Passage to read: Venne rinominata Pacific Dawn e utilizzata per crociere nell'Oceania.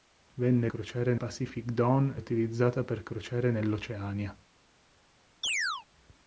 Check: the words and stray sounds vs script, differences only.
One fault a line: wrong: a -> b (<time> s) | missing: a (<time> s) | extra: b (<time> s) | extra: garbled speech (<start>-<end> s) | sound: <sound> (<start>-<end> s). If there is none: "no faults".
wrong: rinominata -> crociere (0.7 s)
missing: e (2.2 s)
sound: chirp (5.4-5.9 s)